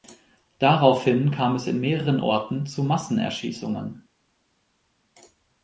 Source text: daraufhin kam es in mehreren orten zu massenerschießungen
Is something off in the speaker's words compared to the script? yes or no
no